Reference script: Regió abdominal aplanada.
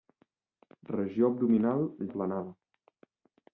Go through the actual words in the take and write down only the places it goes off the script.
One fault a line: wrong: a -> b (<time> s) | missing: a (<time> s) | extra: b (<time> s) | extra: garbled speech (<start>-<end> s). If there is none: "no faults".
no faults